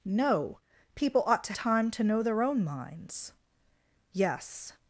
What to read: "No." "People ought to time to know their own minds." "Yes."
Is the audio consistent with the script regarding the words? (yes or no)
yes